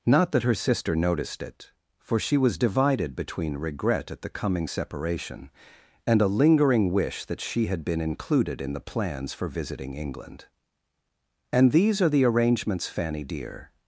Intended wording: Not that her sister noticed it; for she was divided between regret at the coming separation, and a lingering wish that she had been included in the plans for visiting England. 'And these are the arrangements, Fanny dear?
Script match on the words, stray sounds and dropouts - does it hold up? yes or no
yes